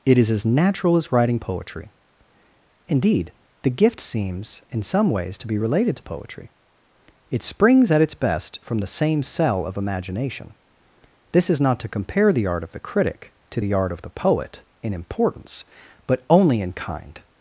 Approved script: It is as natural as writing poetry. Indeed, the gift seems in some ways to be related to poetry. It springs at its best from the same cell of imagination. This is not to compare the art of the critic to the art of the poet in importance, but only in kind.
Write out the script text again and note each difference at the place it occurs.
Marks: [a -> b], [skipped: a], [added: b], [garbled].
It is as natural as writing poetry. Indeed, the gift seems in some ways to be related to poetry. It springs at its best from the same cell of imagination. This is not to compare the art of the critic to the art of the poet in importance, but only in kind.